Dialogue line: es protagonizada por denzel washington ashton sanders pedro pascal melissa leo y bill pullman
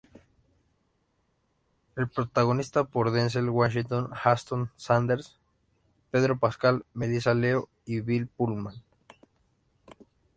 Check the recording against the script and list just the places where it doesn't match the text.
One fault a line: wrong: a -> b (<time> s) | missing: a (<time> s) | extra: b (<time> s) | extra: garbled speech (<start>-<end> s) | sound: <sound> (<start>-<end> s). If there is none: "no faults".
no faults